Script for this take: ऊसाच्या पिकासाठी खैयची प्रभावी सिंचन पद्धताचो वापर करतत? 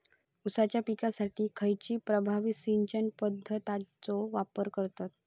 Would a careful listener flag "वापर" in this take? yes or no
no